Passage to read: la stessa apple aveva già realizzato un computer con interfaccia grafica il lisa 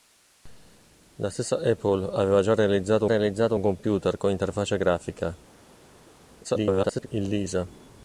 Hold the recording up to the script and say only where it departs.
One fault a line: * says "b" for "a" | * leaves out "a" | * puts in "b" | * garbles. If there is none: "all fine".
* puts in "realizzato"
* garbles